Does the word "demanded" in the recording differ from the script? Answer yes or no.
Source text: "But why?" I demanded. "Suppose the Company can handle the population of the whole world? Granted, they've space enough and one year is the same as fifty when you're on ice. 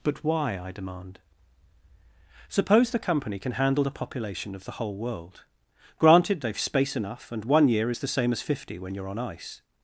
yes